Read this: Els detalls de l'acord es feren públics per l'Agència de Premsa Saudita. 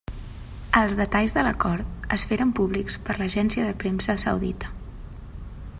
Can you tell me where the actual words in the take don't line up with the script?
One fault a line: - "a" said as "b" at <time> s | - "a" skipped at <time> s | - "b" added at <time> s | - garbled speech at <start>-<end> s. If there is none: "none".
none